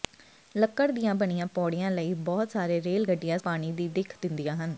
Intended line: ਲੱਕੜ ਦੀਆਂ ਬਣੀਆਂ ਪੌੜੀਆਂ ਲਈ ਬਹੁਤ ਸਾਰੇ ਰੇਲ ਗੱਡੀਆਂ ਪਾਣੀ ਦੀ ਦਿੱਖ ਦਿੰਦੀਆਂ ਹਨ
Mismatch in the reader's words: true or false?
false